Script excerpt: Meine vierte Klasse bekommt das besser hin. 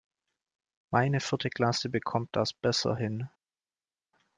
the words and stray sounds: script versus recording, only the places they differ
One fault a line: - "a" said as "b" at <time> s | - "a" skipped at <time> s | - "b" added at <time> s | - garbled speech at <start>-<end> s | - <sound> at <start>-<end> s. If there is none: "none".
none